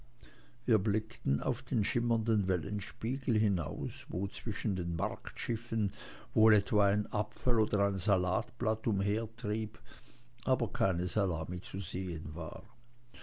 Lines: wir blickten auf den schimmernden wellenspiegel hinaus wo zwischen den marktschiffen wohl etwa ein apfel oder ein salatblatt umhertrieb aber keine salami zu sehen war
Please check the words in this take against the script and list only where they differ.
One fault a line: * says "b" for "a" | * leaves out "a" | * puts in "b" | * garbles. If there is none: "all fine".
all fine